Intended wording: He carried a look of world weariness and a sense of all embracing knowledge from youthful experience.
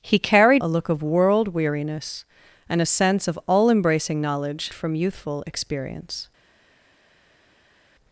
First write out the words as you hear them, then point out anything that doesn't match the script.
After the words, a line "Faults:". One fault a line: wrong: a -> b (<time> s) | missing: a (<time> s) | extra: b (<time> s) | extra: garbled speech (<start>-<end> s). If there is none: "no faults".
He carried a look of world weariness and a sense of all embracing knowledge from youthful experience.
Faults:
no faults